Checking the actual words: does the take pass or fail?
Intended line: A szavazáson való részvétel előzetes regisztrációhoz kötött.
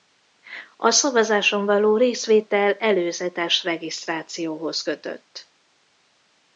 pass